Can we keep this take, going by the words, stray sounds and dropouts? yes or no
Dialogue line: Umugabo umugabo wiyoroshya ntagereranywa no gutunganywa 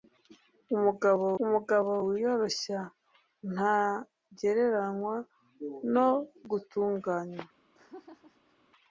no